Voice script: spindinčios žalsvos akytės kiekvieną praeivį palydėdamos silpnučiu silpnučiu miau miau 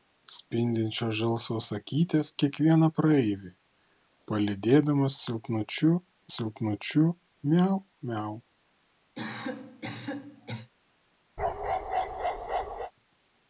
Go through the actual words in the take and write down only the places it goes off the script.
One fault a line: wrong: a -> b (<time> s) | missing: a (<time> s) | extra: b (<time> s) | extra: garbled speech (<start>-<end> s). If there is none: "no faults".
no faults